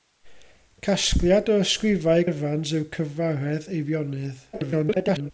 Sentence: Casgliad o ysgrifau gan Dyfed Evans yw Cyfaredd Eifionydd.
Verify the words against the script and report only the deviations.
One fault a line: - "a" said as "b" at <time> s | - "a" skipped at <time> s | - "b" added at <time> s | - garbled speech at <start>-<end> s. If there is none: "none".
- "gan Dyfed" skipped at 2.2 s
- garbled speech at 4.5-5.3 s